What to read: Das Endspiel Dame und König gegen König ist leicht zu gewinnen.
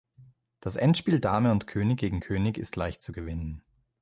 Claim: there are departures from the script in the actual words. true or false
false